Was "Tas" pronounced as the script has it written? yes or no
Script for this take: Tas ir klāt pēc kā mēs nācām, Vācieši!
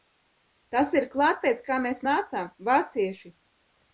yes